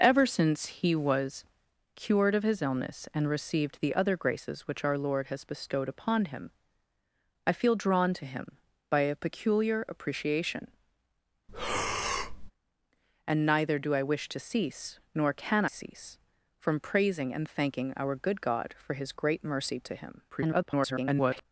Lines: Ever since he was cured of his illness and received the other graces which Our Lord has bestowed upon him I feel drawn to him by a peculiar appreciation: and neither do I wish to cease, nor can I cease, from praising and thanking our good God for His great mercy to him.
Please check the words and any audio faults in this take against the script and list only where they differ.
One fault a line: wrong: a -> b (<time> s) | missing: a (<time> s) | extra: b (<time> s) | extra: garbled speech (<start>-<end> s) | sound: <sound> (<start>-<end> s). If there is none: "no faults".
sound: breath (11.5-12.5 s)
missing: I (15.6 s)
extra: garbled speech (20.3-21.5 s)